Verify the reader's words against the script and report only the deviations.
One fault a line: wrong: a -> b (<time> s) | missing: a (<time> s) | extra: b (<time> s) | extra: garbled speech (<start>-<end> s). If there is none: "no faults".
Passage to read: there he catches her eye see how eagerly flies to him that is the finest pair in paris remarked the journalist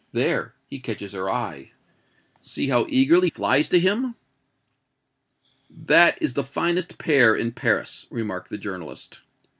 no faults